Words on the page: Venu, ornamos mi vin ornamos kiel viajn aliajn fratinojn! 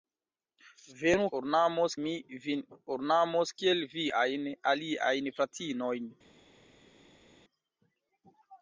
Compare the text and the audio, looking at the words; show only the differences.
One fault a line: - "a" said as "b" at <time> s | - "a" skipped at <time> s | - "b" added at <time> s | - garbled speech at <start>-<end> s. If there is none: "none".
none